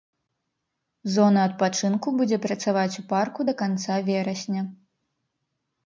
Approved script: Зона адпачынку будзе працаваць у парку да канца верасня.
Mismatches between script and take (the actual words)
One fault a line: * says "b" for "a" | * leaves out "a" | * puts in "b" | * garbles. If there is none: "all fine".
all fine